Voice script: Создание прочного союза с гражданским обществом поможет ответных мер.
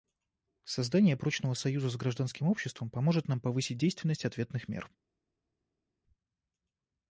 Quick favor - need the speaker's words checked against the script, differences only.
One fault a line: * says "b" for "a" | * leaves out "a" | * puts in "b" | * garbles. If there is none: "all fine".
* puts in "нам повысить действенность"